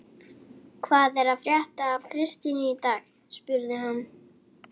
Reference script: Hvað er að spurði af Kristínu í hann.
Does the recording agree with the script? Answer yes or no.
no